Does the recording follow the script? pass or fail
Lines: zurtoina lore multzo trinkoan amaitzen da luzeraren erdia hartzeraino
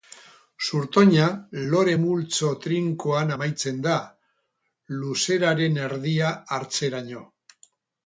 pass